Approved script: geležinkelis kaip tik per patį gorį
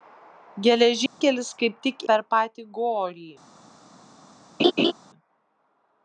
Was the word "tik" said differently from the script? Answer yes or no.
no